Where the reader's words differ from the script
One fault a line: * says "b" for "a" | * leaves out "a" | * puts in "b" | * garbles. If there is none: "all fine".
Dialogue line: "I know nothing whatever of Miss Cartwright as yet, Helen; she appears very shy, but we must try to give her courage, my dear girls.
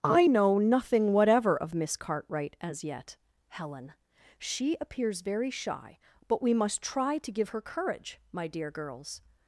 all fine